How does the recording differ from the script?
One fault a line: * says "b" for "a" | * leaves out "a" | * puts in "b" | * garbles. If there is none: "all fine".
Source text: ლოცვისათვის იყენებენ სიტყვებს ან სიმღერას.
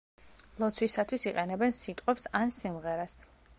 all fine